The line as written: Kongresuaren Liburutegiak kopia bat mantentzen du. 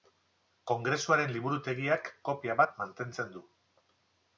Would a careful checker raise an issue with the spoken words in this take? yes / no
no